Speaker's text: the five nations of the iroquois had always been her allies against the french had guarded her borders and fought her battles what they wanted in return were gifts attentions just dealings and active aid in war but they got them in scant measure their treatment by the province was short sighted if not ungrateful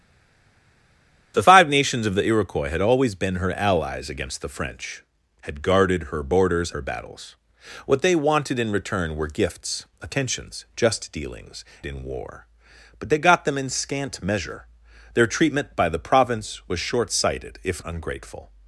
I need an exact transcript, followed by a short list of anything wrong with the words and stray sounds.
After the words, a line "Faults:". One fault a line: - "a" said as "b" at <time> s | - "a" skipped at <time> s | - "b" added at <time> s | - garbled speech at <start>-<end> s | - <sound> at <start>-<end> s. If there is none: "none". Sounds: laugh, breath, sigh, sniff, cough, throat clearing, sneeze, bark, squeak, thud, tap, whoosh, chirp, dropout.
the five nations of the iroquois had always been her allies against the french had guarded her borders her battles what they wanted in return were gifts attentions just dealings in war but they got them in scant measure their treatment by the province was short sighted if ungrateful
Faults:
- "and fought" skipped at 6.7 s
- "and active aid" skipped at 11.6 s
- "not" skipped at 17.8 s